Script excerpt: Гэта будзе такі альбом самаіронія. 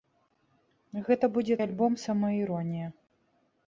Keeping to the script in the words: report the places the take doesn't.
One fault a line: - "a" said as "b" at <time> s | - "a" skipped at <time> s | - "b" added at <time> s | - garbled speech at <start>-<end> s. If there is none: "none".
- "такі" skipped at 1.6 s